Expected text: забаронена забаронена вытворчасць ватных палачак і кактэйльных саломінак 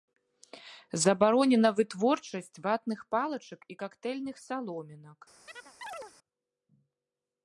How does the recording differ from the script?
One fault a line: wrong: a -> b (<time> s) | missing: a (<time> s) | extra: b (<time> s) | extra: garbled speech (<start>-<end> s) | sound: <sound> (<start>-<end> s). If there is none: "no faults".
missing: забаронена (1.7 s)
sound: chirp (5.5-6.1 s)